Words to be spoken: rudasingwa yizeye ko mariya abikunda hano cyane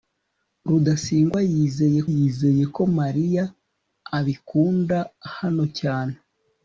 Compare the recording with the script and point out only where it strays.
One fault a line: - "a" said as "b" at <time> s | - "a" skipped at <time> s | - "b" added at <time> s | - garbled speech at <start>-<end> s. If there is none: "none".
- "yizeye" added at 2.1 s